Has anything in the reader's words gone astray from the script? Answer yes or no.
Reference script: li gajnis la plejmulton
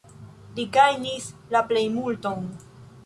no